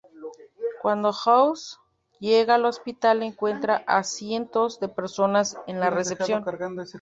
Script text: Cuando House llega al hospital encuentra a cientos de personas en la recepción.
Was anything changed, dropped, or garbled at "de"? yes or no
no